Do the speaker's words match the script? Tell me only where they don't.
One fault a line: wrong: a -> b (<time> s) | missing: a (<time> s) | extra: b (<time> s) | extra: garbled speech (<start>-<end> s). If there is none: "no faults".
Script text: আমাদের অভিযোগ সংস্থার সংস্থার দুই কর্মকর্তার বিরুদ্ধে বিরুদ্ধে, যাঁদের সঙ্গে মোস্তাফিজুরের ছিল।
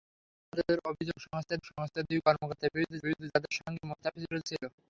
no faults